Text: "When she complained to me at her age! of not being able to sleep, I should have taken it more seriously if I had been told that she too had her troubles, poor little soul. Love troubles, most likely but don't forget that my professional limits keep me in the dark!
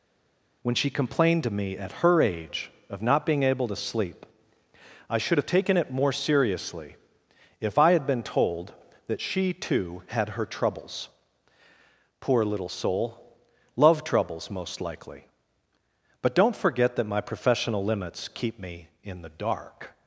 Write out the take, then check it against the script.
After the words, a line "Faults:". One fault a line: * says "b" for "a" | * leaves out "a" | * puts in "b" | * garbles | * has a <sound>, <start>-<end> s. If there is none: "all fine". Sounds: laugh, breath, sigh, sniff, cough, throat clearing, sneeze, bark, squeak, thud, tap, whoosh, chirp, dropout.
"When she complained to me at her age! of not being able to sleep, I should have taken it more seriously if I had been told that she too had her troubles, poor little soul. Love troubles, most likely but don't forget that my professional limits keep me in the dark!
Faults:
all fine